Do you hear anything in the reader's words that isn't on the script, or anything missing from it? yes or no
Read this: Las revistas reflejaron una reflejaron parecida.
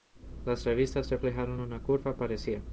yes